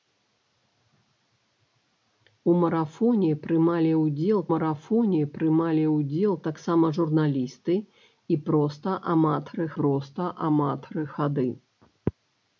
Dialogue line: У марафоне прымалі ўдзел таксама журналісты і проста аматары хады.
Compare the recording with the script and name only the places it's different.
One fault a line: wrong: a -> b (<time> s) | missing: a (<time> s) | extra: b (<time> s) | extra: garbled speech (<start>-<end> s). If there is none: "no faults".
extra: марафоне прымалі ўдзел (4.5 s)
extra: проста аматары (9.8 s)